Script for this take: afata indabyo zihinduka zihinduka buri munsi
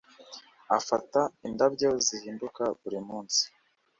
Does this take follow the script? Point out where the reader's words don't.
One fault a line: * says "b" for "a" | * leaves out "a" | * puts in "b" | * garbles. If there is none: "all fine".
* leaves out "zihinduka"